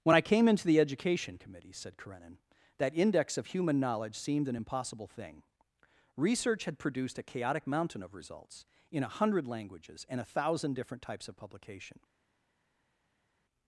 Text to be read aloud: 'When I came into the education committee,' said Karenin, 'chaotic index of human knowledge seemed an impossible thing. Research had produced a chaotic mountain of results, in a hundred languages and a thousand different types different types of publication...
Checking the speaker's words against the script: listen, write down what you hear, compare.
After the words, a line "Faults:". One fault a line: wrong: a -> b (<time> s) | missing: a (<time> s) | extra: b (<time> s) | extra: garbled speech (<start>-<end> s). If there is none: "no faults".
'When I came into the education committee,' said Karenin, 'that index of human knowledge seemed an impossible thing. Research had produced a chaotic mountain of results, in a hundred languages and a thousand different types of publication...
Faults:
wrong: chaotic -> that (2.8 s)
missing: different types (11.3 s)